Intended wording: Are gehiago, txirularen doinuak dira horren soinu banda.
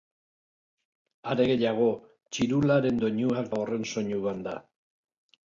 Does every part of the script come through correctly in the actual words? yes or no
no